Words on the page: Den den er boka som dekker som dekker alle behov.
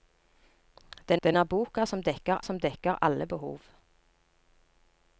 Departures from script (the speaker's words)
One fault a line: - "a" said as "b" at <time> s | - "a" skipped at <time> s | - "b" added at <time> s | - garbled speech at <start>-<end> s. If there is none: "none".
none